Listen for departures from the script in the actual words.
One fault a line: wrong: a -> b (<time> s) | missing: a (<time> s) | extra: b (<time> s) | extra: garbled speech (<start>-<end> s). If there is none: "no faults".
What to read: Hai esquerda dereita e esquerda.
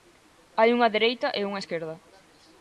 wrong: esquerda -> unha (0.8 s)
extra: unha (1.5 s)